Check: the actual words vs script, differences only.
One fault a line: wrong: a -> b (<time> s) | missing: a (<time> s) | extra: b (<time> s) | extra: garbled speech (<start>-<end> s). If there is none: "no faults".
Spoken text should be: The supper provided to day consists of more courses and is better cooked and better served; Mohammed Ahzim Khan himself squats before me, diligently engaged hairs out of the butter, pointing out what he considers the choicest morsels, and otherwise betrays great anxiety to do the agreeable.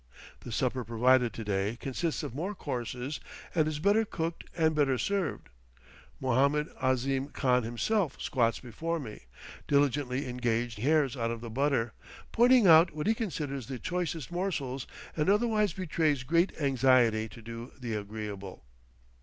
no faults